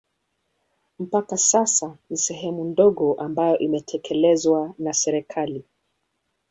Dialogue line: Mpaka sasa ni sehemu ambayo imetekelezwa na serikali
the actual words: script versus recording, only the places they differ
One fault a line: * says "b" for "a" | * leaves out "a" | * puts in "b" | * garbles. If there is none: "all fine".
* puts in "ndogo"